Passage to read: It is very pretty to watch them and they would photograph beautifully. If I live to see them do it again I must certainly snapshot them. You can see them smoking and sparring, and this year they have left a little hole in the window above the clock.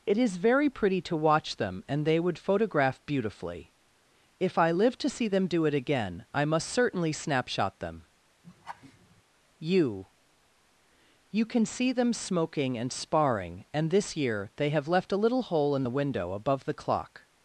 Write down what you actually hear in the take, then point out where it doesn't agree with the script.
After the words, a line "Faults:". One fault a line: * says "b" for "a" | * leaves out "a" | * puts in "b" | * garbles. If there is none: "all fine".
It is very pretty to watch them and they would photograph beautifully. If I live to see them do it again I must certainly snapshot them. You You can see them smoking and sparring, and this year they have left a little hole in the window above the clock.
Faults:
* puts in "You"